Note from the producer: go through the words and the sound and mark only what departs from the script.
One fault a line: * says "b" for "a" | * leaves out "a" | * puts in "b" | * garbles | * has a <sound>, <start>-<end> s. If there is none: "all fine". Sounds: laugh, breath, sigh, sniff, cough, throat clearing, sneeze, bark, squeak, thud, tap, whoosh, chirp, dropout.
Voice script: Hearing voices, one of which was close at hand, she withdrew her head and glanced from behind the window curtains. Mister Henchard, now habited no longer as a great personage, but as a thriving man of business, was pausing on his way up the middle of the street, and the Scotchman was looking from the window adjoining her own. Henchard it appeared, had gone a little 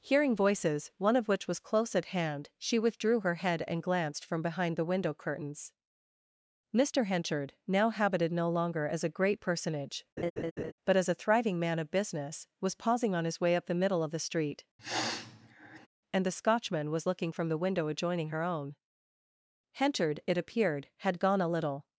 * has a laugh, 10.2-10.7 s
* has a sniff, 14.8-15.9 s